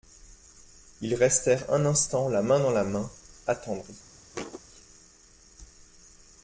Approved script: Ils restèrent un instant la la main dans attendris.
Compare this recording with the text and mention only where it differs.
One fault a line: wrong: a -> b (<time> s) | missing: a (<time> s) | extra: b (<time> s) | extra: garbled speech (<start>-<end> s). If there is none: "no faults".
extra: main dans (2.4 s)
missing: dans (3.1 s)